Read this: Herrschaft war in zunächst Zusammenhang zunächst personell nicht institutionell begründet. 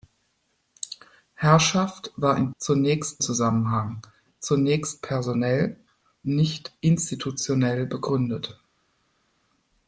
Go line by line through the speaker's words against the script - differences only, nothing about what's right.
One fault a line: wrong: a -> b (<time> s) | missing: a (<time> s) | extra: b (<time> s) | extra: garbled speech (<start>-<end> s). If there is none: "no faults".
no faults